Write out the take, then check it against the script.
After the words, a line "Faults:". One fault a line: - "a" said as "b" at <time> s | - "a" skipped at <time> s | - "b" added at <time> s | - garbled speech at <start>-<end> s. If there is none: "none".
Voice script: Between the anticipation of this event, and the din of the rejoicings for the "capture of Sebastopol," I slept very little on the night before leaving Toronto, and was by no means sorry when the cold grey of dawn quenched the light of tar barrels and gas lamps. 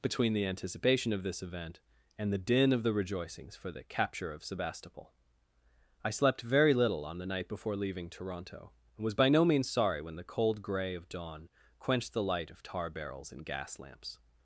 Between the anticipation of this event, and the din of the rejoicings for the "capture of Sebastopol," I slept very little on the night before leaving Toronto, and was by no means sorry when the cold grey of dawn quenched the light of tar barrels and gas lamps.
Faults:
none